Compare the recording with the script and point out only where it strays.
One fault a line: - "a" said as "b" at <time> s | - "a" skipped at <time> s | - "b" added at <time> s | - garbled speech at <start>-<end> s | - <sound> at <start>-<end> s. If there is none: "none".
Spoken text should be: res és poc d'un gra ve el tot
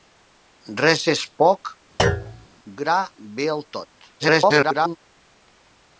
- "d'un" skipped at 1.7 s
- thud at 2.0-2.5 s
- garbled speech at 4.2-5.0 s